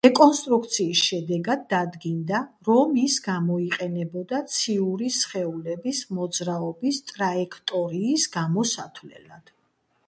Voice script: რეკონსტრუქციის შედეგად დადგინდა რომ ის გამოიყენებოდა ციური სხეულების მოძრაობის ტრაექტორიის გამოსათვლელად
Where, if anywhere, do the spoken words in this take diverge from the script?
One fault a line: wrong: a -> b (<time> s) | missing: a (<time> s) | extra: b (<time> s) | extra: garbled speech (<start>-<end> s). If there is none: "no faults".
no faults